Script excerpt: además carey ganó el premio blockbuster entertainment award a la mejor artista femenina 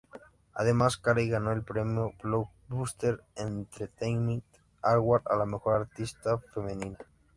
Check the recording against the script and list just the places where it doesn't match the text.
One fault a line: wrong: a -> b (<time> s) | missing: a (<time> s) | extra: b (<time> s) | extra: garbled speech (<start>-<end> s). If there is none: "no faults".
no faults